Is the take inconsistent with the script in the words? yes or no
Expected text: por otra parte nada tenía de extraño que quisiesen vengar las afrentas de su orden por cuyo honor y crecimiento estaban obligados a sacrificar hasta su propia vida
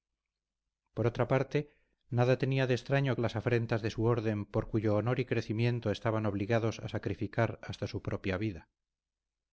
yes